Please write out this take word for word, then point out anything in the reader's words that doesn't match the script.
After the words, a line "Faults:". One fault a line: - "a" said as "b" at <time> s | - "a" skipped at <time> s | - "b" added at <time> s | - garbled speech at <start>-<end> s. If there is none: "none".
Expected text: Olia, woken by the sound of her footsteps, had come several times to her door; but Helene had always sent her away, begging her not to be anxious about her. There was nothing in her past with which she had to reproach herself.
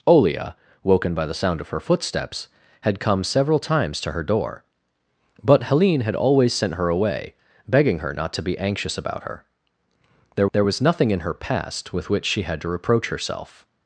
Olia, woken by the sound of her footsteps, had come several times to her door; but Helene had always sent her away, begging her not to be anxious about her. There there was nothing in her past with which she had to reproach herself.
Faults:
- "there" added at 10.5 s